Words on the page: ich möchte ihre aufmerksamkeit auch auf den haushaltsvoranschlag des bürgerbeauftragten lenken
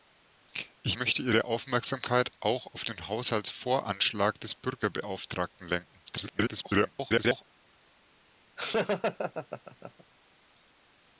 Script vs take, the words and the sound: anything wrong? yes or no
yes